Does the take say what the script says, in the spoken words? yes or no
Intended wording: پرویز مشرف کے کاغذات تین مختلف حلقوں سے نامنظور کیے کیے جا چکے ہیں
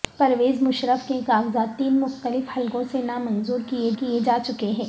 yes